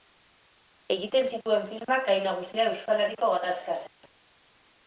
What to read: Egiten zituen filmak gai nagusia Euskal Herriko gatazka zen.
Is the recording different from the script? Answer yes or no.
no